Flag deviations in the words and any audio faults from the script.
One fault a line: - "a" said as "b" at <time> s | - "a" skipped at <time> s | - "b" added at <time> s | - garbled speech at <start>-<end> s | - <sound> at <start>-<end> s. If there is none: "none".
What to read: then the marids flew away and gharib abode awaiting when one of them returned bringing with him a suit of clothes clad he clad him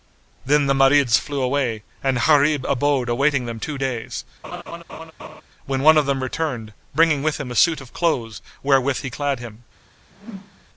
- "them two days" added at 3.5 s
- laugh at 4.4-5.4 s
- "clad" said as "wherewith" at 8.6 s
- whoosh at 10.1-10.7 s